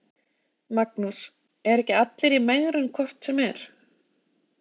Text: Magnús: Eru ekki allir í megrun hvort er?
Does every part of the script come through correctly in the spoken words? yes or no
no